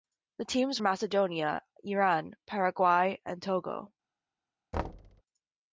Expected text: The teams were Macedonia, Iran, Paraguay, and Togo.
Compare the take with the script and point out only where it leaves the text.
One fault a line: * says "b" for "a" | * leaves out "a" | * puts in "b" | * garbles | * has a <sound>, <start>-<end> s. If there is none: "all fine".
* leaves out "were"
* has a thud, 4.7-5.2 s